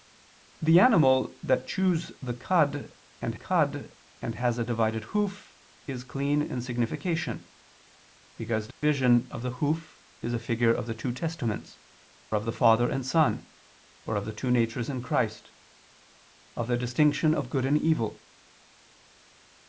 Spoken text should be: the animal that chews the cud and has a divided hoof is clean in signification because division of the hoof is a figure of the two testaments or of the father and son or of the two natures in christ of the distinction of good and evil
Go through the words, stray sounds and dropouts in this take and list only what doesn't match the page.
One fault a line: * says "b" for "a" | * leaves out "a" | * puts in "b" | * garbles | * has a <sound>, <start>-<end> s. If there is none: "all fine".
* puts in "cud and"
* has a dropout, 8.7-8.8 s
* leaves out "or"